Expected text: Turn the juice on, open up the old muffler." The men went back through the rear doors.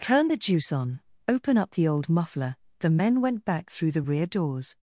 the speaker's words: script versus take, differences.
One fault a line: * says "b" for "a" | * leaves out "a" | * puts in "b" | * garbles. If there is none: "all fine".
all fine